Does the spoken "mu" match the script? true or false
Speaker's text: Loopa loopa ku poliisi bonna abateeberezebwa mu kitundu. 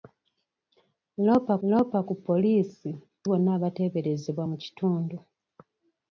true